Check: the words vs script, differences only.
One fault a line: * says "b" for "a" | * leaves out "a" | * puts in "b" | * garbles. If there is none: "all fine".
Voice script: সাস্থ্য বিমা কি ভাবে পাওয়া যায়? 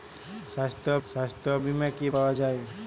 * puts in "সাস্থ্য"
* leaves out "ভাবে"